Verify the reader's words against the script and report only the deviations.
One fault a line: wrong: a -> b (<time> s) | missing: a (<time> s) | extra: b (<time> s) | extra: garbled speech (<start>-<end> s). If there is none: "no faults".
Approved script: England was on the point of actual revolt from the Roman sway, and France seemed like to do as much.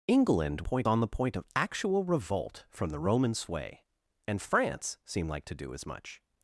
wrong: was -> point (0.6 s)